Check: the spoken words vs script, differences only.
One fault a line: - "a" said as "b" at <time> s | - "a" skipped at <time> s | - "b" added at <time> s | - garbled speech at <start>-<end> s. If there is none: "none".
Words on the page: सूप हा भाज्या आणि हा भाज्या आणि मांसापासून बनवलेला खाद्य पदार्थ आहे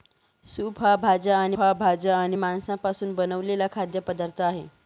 none